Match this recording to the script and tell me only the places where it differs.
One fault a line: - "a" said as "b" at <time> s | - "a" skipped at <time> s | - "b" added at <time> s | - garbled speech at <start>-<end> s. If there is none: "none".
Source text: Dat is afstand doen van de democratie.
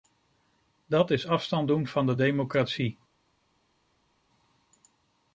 none